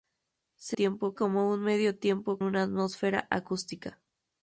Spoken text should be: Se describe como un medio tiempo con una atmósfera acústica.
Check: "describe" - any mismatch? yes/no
yes